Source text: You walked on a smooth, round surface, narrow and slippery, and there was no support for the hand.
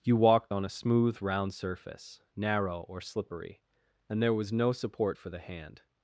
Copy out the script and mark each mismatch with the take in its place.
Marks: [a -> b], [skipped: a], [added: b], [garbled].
You walked on a smooth, round surface, narrow [and -> or] slippery, and there was no support for the hand.